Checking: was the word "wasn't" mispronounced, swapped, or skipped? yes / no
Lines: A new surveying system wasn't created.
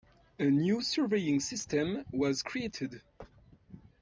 yes